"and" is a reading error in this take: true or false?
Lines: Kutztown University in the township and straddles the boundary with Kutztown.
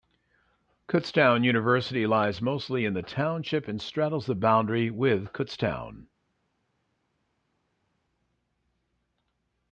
false